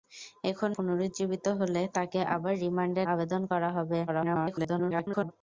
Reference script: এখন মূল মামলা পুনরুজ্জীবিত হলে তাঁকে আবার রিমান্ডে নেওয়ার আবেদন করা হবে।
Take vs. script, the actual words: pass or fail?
fail